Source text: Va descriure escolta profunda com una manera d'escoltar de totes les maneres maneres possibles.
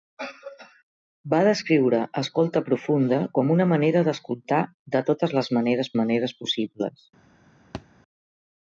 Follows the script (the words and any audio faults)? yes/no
no